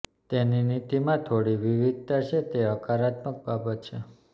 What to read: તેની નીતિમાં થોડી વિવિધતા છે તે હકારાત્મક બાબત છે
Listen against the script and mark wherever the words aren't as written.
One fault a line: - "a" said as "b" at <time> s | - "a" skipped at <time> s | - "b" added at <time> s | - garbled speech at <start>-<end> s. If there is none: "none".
none